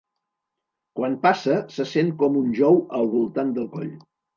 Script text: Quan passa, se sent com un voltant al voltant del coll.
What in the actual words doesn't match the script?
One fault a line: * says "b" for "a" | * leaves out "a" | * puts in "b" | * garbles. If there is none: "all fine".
* says "jou" for "voltant"